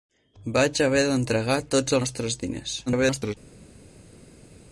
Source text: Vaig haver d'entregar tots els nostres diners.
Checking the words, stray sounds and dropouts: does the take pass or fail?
fail